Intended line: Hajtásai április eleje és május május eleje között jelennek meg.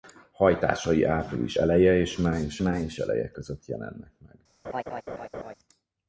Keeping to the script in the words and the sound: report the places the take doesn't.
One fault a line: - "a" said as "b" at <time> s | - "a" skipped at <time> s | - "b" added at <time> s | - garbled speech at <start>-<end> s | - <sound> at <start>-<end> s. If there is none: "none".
- laugh at 4.6-5.5 s